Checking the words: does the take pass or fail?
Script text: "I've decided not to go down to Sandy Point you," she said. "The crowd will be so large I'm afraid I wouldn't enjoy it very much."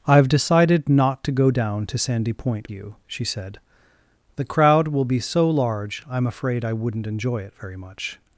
pass